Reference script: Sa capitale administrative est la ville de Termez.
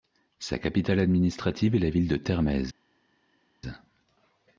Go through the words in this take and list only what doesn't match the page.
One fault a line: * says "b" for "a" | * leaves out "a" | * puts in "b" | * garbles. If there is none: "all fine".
all fine